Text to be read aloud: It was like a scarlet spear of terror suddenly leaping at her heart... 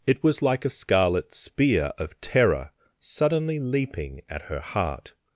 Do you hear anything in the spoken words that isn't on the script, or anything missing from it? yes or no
no